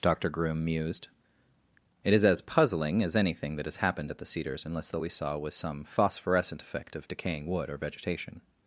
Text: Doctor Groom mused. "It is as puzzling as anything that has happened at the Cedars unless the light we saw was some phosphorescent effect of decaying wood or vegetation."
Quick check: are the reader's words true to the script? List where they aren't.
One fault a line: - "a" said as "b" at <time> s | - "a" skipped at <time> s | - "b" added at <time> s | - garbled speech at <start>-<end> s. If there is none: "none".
- "light" skipped at 5.0 s